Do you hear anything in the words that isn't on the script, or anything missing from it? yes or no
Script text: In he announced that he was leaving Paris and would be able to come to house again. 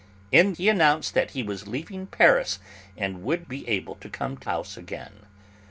no